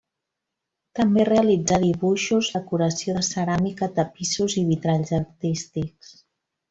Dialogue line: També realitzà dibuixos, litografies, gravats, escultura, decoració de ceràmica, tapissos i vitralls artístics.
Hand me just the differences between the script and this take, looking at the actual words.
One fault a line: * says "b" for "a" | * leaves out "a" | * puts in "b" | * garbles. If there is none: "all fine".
* leaves out "litografies gravats escultura"